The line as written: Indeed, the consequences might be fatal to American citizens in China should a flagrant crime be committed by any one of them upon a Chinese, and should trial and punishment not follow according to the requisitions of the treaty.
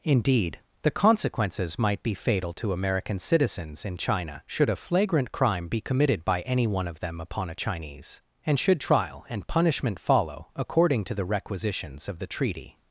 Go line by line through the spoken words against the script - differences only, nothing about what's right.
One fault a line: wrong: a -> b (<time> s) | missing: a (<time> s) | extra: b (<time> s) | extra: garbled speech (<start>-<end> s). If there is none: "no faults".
missing: not (10.0 s)